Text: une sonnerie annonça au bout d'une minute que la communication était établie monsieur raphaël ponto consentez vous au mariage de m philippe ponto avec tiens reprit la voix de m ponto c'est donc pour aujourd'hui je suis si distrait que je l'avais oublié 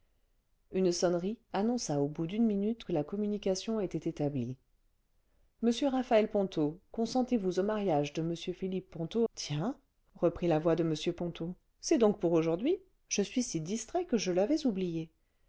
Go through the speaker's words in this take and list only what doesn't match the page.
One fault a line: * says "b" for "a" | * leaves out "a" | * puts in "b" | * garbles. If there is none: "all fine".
* leaves out "avec"